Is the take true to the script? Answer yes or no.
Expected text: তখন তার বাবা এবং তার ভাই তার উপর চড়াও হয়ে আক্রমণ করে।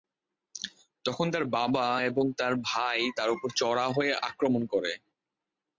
yes